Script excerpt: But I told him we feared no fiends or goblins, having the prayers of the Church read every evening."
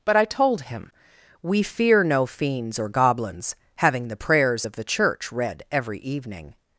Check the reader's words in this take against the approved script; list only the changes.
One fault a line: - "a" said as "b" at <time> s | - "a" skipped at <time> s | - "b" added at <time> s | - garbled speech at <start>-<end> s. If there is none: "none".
- "feared" said as "fear" at 1.6 s